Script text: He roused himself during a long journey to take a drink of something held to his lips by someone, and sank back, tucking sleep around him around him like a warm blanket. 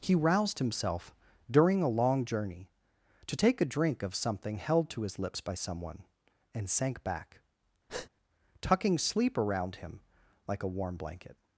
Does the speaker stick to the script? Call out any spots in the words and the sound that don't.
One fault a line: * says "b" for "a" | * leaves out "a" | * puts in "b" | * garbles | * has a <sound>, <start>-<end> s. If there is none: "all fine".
* has a breath, 7.9-8.1 s
* leaves out "around him"